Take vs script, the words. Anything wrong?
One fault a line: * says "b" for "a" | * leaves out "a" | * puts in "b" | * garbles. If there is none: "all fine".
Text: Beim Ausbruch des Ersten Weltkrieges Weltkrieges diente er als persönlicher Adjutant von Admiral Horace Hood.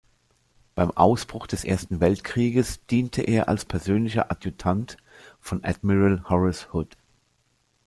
* leaves out "Weltkrieges"